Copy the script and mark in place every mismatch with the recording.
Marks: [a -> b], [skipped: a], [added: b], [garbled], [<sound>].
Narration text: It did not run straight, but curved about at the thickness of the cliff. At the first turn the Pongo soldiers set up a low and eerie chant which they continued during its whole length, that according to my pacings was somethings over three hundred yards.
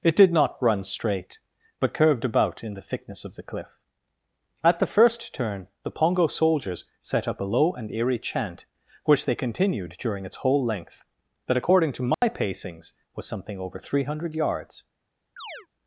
It did not run straight, but curved about [at -> in] the thickness of the cliff. At the first turn the Pongo soldiers set up a low and eerie chant which they continued during its whole length, that according to my [dropout] pacings was [somethings -> something] over three hundred yards. [chirp]